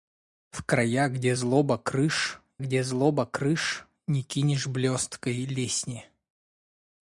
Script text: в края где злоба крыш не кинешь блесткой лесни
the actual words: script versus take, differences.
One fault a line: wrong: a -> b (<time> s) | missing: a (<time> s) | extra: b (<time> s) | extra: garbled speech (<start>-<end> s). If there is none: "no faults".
extra: где злоба крыш (2.6 s)